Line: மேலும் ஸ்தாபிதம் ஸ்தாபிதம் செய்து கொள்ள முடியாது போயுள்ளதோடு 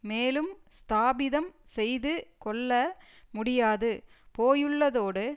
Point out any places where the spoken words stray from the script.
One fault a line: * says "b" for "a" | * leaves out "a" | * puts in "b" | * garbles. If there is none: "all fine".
* leaves out "ஸ்தாபிதம்"